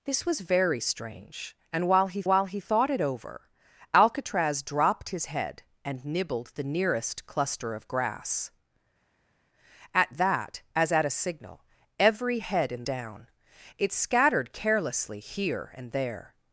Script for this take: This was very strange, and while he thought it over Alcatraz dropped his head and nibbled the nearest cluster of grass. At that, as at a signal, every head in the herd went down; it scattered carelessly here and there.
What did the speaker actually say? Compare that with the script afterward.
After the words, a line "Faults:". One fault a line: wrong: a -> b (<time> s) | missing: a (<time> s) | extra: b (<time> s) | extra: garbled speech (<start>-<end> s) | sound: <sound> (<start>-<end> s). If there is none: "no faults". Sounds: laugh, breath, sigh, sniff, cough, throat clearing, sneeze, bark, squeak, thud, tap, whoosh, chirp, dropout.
This was very strange, and while he while he thought it over Alcatraz dropped his head and nibbled the nearest cluster of grass. At that, as at a signal, every head in down; it scattered carelessly here and there.
Faults:
extra: while he (2.3 s)
missing: the herd went (12.8 s)